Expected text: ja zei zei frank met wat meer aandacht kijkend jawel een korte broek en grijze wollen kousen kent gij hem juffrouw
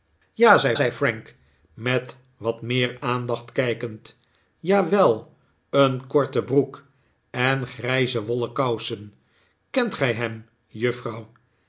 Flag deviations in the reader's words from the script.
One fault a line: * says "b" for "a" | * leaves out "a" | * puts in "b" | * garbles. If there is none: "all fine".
all fine